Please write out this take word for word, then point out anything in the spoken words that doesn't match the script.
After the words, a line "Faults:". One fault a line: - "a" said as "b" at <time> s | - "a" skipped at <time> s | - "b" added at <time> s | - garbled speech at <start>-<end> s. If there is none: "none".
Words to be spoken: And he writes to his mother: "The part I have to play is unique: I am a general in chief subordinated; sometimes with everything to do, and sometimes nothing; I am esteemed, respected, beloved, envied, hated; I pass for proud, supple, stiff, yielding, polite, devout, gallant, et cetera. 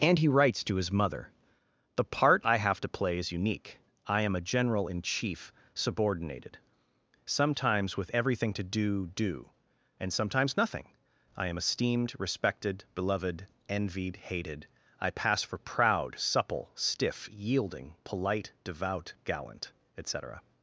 And he writes to his mother: "The part I have to play is unique: I am a general in chief subordinated; sometimes with everything to do do, and sometimes nothing; I am esteemed, respected, beloved, envied, hated; I pass for proud, supple, stiff, yielding, polite, devout, gallant, et cetera.
Faults:
- "do" added at 9.1 s